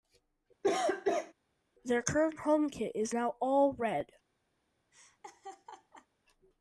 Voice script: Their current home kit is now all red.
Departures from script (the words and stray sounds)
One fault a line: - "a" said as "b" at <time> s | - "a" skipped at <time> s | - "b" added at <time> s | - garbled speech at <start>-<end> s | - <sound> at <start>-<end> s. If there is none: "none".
- cough at 0.6-1.3 s
- laugh at 4.9-6.1 s